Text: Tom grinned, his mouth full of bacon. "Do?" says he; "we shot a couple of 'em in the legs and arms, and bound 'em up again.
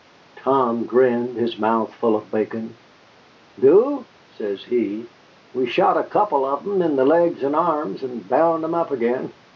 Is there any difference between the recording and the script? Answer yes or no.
no